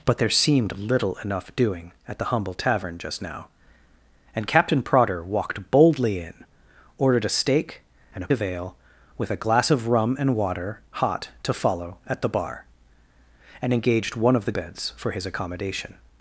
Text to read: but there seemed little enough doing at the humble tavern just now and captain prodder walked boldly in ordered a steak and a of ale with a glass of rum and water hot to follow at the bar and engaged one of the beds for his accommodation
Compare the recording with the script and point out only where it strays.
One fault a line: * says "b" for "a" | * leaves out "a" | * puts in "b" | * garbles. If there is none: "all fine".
all fine